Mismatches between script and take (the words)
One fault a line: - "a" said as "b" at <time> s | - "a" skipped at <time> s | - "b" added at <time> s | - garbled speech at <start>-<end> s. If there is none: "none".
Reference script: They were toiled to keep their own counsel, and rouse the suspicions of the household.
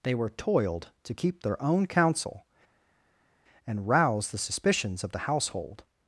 none